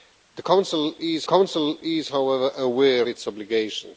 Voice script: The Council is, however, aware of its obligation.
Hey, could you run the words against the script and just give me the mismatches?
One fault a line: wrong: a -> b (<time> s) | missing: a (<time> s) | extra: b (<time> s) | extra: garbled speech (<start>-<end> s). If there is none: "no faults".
extra: Council is (1.3 s)
missing: of (3.1 s)